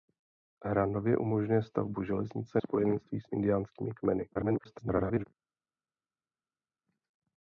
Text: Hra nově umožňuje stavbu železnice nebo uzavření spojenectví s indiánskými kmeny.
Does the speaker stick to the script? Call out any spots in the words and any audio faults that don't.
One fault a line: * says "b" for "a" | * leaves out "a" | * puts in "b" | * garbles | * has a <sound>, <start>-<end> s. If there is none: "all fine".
* leaves out "nebo uzavření"
* garbles